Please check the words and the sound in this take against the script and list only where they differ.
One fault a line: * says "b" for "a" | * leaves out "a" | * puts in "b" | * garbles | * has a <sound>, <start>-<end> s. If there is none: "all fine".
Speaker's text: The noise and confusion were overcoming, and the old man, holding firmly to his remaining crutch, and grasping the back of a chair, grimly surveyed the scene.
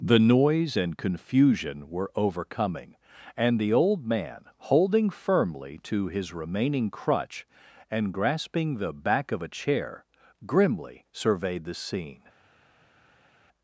all fine